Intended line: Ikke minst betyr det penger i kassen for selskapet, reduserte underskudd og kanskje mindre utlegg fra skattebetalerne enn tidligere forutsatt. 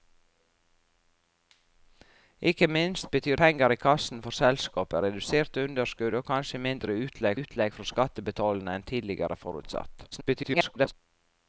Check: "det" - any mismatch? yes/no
yes